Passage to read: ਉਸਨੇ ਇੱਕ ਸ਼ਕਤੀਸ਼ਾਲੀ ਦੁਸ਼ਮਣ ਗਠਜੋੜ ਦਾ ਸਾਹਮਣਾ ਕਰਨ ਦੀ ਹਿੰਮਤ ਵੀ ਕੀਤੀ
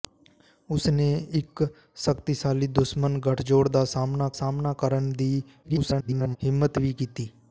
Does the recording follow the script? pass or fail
fail